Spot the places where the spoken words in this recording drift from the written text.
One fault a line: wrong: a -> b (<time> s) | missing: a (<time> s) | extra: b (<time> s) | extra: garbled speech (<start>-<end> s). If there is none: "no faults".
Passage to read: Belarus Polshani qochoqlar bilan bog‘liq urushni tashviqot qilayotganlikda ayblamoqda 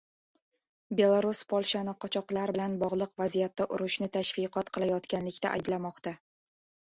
extra: vaziyatda (3.2 s)